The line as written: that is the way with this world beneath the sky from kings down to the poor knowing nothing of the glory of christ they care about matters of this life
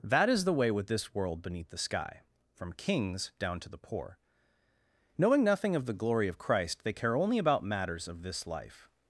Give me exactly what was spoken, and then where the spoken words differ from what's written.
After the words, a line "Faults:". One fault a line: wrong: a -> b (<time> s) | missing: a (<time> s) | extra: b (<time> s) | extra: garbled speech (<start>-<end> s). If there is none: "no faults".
that is the way with this world beneath the sky from kings down to the poor knowing nothing of the glory of christ they care only about matters of this life
Faults:
extra: only (7.2 s)